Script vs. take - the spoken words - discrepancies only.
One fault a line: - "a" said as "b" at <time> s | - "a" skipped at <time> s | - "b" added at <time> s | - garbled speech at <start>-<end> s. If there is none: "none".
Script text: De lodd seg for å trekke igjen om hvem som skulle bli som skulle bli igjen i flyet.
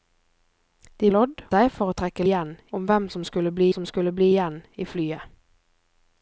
none